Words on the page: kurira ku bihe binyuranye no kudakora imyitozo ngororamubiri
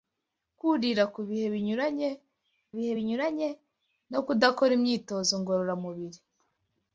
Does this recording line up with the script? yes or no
no